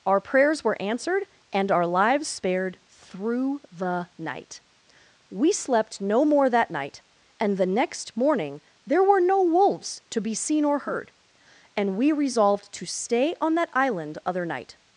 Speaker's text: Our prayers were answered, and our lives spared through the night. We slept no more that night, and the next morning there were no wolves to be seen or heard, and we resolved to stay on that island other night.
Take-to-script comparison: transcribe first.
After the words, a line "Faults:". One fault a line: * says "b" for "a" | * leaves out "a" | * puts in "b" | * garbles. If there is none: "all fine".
Our prayers were answered, and our lives spared through the night. We slept no more that night, and the next morning there were no wolves to be seen or heard, and we resolved to stay on that island other night.
Faults:
all fine